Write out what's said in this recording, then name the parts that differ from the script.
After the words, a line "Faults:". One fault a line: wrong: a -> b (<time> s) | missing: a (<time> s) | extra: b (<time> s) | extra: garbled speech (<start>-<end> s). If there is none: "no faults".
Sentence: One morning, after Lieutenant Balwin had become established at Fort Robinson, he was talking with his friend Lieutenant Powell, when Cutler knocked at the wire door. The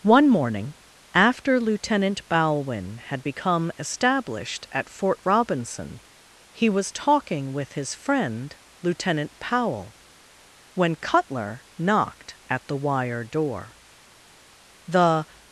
One morning, after Lieutenant Balwin had become established at Fort Robinson, he was talking with his friend Lieutenant Powell, when Cutler knocked at the wire door. The
Faults:
no faults